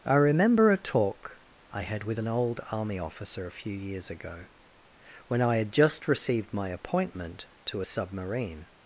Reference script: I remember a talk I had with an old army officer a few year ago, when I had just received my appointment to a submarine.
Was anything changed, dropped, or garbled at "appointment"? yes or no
no